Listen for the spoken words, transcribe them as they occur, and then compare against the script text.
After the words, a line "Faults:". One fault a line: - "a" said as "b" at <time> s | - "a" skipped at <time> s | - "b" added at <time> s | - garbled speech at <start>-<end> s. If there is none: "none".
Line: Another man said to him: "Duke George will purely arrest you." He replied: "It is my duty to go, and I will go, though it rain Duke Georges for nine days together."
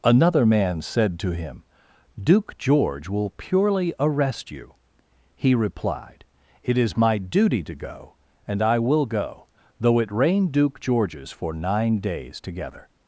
Another man said to him: "Duke George will purely arrest you." He replied: "It is my duty to go, and I will go, though it rain Duke Georges for nine days together."
Faults:
none